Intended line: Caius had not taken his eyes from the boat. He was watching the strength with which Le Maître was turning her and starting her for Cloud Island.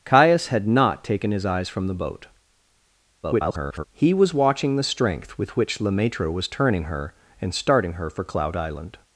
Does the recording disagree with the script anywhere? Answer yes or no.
yes